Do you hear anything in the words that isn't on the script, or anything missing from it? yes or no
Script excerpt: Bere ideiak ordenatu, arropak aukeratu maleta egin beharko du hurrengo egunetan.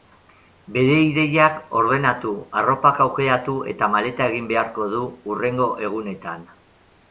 yes